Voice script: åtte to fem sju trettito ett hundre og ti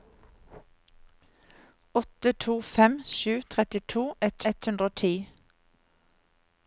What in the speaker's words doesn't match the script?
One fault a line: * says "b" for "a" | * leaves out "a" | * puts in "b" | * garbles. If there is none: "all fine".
* puts in "ett"